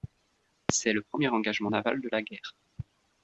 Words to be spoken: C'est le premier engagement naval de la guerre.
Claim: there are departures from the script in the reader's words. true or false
false